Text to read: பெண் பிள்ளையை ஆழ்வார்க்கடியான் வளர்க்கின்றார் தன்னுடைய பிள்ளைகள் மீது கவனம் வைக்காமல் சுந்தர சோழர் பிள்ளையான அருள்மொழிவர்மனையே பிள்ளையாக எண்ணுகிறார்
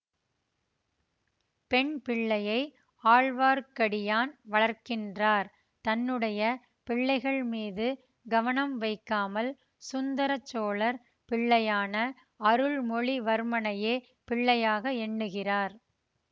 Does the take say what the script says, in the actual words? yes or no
yes